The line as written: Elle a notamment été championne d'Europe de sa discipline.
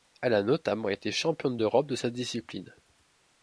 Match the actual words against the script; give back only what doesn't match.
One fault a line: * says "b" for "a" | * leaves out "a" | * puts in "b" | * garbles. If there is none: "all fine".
all fine